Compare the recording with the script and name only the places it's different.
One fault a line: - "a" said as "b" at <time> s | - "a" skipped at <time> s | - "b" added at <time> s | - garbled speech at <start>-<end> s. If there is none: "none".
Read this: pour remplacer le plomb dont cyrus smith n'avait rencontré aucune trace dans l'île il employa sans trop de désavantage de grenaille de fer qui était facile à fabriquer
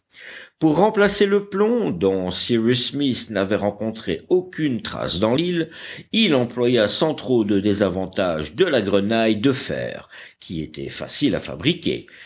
- "la" added at 8.6 s